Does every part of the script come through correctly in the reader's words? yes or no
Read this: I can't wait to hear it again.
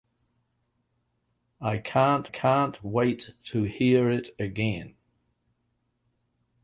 no